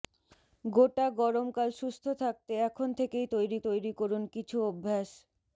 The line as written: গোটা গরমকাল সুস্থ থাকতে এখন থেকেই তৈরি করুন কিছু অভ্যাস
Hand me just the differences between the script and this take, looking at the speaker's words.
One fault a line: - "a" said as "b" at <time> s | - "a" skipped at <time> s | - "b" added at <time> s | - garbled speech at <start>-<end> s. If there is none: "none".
- "তৈরি" added at 3.7 s